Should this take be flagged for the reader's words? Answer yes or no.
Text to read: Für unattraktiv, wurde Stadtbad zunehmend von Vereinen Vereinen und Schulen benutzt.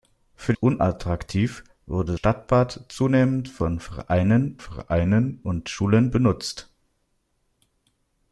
no